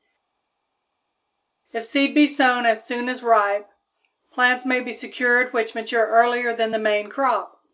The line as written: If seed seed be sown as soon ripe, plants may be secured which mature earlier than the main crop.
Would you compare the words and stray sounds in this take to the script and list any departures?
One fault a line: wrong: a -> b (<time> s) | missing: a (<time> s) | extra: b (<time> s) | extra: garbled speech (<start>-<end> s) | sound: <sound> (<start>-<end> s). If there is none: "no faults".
missing: seed (2.1 s)
extra: as (3.1 s)